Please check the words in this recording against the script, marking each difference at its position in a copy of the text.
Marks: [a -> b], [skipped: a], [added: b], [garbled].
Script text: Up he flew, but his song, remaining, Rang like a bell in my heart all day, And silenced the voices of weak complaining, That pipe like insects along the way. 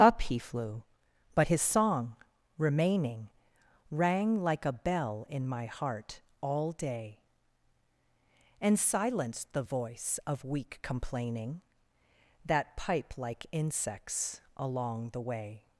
Up he flew, but his song, remaining, Rang like a bell in my heart all day, And silenced the [voices -> voice] of weak complaining, That pipe like insects along the way.